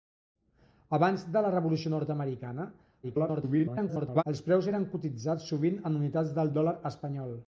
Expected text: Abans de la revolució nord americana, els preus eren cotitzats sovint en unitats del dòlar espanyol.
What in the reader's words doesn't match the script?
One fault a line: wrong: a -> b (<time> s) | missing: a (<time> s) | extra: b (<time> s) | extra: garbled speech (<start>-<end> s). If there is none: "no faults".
extra: garbled speech (3.0-4.2 s)